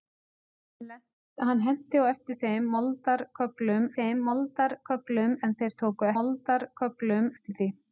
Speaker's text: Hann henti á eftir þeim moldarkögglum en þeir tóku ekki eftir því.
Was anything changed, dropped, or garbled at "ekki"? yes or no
yes